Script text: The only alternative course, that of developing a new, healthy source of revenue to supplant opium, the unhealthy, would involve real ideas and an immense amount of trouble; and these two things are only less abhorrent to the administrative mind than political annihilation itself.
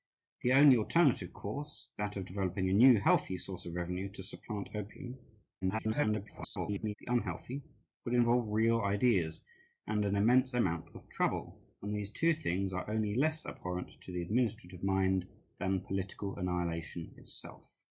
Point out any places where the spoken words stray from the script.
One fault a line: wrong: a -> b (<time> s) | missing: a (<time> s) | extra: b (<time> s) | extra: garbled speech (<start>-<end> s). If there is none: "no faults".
extra: garbled speech (5.6-6.9 s)